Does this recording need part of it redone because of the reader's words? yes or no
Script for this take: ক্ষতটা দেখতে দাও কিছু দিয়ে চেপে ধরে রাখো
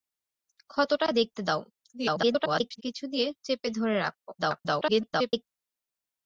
yes